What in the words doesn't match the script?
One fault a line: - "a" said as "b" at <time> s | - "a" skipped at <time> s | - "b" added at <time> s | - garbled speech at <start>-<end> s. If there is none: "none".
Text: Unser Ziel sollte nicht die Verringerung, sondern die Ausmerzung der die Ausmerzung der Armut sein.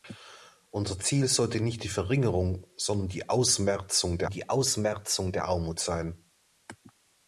none